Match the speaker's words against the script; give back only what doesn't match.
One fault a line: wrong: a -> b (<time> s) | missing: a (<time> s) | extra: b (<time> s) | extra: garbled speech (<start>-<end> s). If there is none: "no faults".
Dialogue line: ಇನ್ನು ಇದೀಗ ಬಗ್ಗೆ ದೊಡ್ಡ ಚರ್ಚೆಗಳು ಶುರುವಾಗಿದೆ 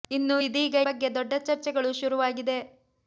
no faults